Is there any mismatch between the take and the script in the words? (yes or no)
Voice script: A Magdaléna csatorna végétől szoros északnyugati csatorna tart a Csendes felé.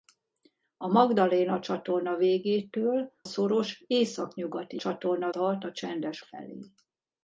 no